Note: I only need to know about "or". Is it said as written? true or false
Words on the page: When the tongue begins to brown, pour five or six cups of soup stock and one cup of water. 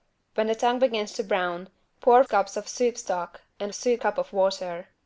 false